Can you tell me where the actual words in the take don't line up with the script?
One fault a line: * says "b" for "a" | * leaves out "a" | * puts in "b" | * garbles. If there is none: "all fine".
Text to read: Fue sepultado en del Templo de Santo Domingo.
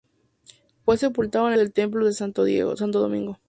all fine